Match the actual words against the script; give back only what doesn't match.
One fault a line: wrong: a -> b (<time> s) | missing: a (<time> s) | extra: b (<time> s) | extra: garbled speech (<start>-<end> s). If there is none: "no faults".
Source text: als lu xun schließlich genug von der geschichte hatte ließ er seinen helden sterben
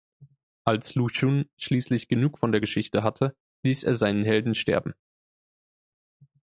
no faults